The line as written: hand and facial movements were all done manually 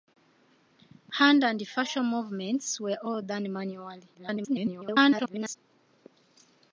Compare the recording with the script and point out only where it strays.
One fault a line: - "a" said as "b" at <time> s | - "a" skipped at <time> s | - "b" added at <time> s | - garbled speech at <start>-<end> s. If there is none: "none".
- garbled speech at 4.1-5.6 s